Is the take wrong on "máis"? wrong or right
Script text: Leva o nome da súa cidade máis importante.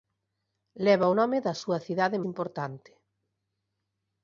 wrong